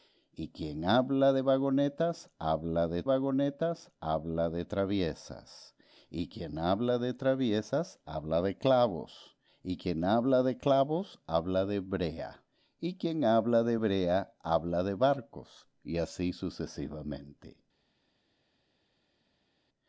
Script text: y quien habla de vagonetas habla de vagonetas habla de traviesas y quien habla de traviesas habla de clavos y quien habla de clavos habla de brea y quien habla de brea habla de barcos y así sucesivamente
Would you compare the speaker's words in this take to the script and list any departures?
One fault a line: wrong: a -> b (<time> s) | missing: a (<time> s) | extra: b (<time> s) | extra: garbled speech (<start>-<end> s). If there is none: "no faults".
no faults